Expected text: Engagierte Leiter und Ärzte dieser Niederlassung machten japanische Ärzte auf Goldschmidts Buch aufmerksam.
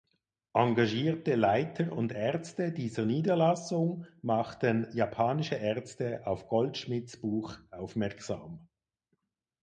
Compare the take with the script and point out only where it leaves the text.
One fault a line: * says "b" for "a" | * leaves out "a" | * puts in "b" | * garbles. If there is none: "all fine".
all fine